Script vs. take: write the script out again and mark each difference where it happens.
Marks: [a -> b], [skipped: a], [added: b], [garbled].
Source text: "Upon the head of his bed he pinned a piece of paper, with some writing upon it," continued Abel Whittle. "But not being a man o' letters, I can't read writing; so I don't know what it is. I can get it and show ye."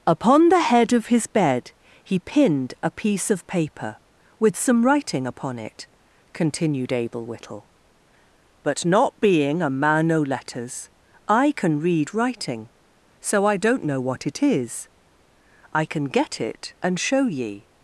"Upon the head of his bed he pinned a piece of paper, with some writing upon it," continued Abel Whittle. "But not being a man o' letters, I [can't -> can] read writing; so I don't know what it is. I can get it and show ye."